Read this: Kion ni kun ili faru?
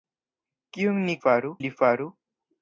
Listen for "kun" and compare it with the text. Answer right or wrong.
wrong